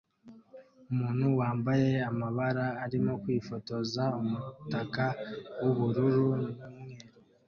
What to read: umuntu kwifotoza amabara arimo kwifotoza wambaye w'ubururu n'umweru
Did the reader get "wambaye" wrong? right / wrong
wrong